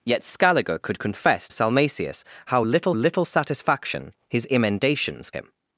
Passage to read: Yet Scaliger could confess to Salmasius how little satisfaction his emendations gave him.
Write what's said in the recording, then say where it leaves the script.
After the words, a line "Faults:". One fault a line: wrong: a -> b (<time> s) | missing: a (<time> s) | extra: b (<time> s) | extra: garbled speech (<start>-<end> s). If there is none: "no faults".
Yet Scaliger could confess Salmasius how little little satisfaction his emendations him.
Faults:
missing: to (1.5 s)
extra: little (2.9 s)
missing: gave (5.3 s)